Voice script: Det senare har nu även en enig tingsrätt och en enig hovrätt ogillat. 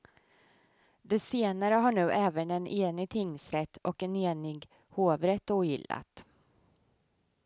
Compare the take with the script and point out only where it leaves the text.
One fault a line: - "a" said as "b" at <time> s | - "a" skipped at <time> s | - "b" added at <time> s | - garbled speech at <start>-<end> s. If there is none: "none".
none